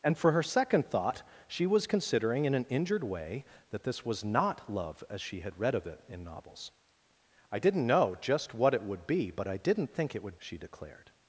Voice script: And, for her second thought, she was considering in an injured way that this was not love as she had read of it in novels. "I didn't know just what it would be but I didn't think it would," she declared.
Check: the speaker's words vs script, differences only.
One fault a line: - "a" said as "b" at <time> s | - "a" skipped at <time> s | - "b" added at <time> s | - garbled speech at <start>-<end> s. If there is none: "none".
none